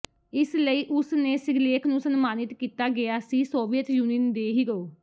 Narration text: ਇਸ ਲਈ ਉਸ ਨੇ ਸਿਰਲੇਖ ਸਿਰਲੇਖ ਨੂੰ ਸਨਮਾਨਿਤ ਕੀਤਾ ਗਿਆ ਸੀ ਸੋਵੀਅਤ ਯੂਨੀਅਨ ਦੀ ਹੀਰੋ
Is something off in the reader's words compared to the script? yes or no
yes